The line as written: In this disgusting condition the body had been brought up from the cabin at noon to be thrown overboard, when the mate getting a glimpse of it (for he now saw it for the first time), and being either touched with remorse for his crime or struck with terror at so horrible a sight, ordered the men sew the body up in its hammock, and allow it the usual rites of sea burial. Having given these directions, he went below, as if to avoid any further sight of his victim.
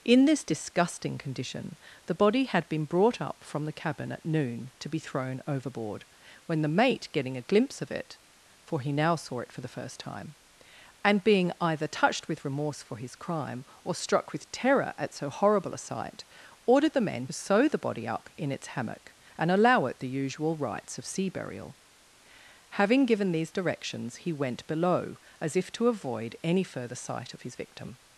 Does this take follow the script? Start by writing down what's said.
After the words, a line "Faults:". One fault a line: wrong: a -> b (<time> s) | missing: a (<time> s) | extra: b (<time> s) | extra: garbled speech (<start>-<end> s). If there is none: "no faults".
In this disgusting condition the body had been brought up from the cabin at noon to be thrown overboard, when the mate getting a glimpse of it (for he now saw it for the first time), and being either touched with remorse for his crime or struck with terror at so horrible a sight, ordered the men sew the body up in its hammock, and allow it the usual rites of sea burial. Having given these directions, he went below, as if to avoid any further sight of his victim.
Faults:
no faults